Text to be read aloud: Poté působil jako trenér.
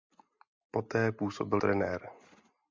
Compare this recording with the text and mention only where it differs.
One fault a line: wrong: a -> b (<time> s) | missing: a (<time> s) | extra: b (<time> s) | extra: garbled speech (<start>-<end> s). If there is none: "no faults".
missing: jako (1.6 s)